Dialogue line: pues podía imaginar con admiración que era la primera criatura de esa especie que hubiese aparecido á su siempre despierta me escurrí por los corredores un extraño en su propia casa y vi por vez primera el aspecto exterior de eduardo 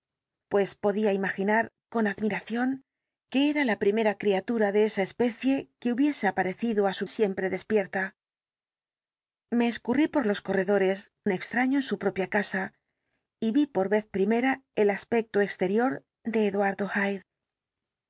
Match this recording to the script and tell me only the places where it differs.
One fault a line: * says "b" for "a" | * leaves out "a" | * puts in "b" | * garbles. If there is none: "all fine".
all fine